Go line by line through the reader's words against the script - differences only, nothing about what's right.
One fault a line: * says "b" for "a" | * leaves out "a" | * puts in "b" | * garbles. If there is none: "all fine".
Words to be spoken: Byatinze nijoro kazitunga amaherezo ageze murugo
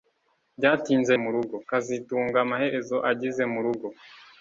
* says "murugo" for "nijoro"